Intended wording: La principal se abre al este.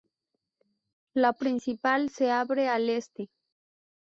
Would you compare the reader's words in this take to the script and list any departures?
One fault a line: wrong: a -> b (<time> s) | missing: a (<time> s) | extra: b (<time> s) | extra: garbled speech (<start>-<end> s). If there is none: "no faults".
no faults